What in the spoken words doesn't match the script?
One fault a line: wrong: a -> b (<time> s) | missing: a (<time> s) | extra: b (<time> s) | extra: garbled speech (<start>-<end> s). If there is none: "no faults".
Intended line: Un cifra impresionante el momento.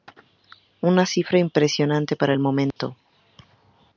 wrong: Un -> Una (0.8 s)
extra: para (2.1 s)